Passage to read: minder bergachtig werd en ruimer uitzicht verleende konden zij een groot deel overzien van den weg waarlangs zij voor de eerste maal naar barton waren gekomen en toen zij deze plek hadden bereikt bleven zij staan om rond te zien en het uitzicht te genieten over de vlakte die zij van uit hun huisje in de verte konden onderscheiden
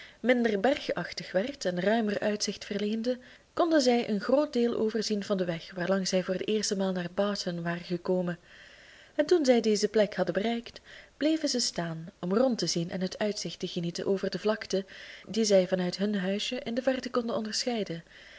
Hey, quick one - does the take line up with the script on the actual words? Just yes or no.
yes